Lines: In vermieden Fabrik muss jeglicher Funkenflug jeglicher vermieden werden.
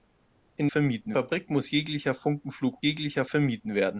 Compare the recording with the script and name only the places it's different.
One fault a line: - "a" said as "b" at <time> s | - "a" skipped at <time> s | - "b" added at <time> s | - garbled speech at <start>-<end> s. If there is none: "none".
none